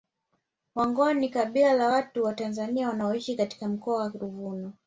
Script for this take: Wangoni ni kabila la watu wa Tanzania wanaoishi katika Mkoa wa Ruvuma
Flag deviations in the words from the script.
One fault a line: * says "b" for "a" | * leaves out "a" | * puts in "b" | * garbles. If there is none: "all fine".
all fine